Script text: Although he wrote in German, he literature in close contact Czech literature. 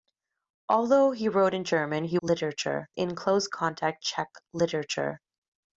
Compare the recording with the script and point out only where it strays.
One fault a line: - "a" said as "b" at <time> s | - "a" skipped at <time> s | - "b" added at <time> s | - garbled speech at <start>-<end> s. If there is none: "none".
none